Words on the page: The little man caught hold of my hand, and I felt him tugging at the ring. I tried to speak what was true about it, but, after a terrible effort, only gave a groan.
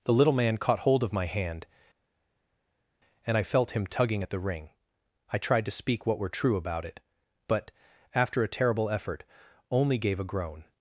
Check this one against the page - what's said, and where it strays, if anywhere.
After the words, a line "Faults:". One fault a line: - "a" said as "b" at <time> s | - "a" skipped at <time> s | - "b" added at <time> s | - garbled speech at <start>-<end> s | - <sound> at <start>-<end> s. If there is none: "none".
The little man caught hold of my hand, and I felt him tugging at the ring. I tried to speak what were true about it, but, after a terrible effort, only gave a groan.
Faults:
- "was" said as "were" at 6.2 s